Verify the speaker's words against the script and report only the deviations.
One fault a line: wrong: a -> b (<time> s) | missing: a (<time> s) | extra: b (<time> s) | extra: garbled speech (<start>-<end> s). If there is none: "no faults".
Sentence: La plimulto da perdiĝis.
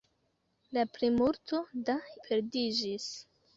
no faults